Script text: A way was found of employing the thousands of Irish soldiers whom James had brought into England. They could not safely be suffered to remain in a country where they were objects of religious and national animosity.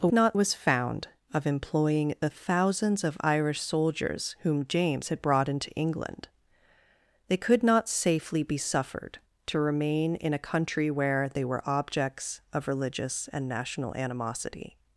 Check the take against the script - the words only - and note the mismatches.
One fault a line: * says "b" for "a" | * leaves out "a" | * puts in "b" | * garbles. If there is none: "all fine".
* says "not" for "way"